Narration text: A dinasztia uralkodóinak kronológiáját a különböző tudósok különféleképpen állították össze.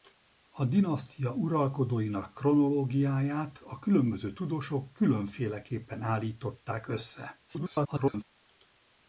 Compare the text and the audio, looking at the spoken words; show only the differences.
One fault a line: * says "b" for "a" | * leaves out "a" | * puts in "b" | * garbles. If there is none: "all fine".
* garbles